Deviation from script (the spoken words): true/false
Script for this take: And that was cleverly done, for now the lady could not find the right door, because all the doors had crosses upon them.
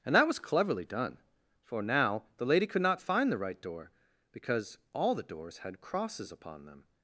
false